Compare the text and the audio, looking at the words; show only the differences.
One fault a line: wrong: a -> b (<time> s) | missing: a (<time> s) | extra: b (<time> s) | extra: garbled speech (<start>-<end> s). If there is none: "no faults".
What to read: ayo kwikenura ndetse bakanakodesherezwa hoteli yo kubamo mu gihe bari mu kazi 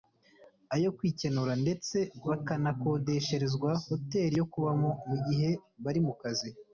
no faults